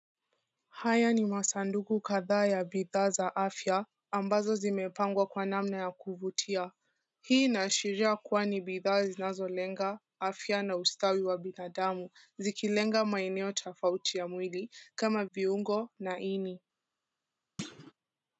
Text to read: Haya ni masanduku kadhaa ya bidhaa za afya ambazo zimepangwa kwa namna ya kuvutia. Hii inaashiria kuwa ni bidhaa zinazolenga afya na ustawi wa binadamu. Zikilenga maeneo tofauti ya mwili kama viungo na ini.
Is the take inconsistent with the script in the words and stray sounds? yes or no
yes